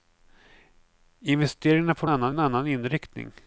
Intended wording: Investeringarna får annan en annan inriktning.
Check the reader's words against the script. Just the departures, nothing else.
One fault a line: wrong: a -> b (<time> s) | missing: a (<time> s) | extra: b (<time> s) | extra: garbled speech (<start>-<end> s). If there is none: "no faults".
no faults